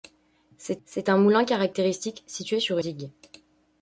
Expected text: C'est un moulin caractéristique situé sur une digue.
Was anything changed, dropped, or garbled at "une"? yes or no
yes